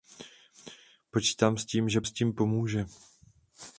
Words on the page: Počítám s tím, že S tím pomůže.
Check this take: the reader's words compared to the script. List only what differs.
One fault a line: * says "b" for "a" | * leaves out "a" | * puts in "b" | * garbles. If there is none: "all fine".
all fine